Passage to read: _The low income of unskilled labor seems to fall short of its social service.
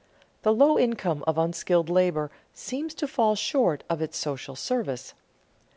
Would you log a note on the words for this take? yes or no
no